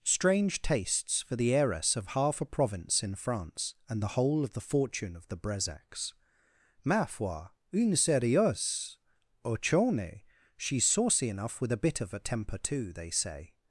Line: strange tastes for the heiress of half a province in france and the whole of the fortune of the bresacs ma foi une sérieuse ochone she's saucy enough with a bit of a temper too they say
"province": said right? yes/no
yes